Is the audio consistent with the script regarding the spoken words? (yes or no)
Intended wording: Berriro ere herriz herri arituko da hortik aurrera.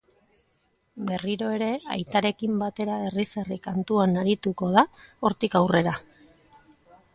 no